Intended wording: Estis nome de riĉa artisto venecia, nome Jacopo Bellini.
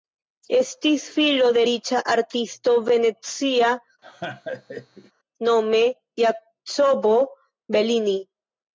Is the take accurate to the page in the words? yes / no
no